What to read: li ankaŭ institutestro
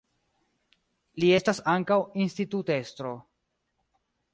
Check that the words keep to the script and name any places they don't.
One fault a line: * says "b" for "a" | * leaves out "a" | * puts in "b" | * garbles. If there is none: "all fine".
* puts in "estas"